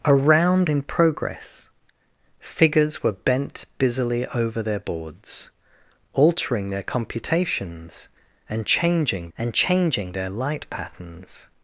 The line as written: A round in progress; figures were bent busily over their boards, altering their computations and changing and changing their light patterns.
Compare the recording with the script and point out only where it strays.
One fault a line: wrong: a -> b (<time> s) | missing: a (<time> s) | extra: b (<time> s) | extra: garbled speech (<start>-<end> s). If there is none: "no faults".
no faults